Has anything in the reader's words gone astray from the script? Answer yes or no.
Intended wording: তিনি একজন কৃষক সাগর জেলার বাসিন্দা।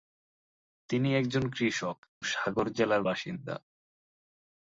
no